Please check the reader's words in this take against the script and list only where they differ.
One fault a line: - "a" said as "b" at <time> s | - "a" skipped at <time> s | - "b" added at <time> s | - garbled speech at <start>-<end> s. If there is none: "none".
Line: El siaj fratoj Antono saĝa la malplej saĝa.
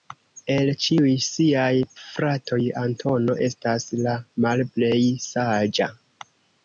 - "ĉiuj" added at 0.8 s
- "saĝa" said as "estas" at 3.5 s